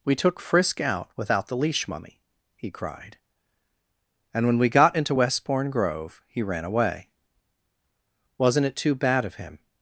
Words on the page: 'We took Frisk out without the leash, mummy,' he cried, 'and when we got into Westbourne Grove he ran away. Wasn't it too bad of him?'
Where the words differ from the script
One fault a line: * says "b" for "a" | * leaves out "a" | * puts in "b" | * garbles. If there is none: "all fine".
all fine